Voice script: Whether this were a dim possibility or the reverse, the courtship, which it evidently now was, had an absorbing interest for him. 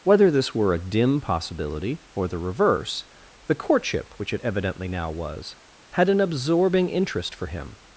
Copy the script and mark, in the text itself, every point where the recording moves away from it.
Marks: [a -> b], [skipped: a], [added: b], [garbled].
Whether this were a dim possibility or the reverse, the courtship, which it evidently now was, had an absorbing interest for him.